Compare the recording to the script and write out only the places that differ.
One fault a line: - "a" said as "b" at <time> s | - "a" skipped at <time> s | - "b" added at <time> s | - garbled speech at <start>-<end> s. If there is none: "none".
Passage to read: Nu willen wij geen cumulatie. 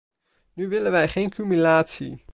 none